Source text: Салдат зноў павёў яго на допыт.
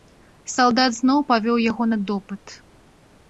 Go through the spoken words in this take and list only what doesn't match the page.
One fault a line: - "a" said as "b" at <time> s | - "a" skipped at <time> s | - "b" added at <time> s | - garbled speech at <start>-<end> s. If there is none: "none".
none